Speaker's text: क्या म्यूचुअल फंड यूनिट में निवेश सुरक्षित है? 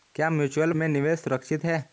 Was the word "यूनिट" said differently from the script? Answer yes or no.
yes